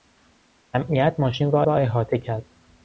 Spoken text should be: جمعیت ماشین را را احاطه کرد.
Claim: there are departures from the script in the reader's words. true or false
false